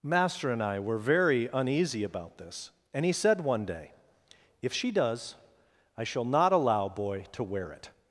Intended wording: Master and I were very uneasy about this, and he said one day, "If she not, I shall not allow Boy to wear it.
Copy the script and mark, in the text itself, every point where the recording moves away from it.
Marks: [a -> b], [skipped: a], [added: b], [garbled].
Master and I were very uneasy about this, and he said one day, "If she [not, -> does] I shall not allow Boy to wear it.